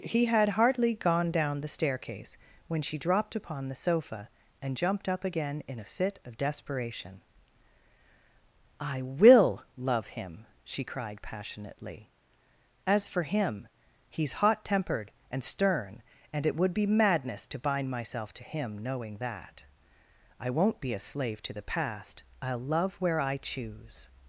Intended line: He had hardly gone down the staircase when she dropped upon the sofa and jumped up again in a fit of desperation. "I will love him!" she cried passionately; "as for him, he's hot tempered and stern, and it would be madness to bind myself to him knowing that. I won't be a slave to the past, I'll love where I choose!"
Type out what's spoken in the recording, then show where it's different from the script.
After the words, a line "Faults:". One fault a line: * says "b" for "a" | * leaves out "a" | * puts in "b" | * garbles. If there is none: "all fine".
He had hardly gone down the staircase when she dropped upon the sofa and jumped up again in a fit of desperation. "I will love him!" she cried passionately; "as for him, he's hot tempered and stern, and it would be madness to bind myself to him knowing that. I won't be a slave to the past, I'll love where I choose!"
Faults:
all fine